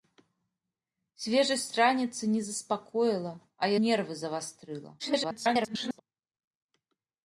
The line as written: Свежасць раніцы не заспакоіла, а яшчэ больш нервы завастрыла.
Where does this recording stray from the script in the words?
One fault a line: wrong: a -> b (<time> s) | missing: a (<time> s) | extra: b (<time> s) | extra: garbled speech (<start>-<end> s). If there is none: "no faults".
missing: яшчэ больш (3.7 s)
extra: garbled speech (5.0-6.0 s)